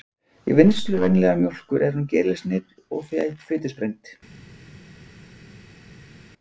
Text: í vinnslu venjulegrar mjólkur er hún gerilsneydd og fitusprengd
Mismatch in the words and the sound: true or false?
false